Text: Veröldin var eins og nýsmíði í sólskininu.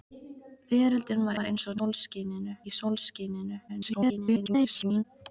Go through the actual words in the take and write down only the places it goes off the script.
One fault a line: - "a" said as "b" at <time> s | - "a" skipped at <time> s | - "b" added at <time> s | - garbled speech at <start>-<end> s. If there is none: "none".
- "var" added at 1.4 s
- "nýsmíði" said as "sólskininu" at 1.7 s
- garbled speech at 3.7-5.0 s